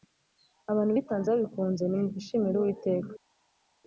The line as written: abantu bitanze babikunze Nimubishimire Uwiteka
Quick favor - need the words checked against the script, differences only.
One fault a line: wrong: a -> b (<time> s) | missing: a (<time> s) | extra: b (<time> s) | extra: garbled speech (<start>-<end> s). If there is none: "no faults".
no faults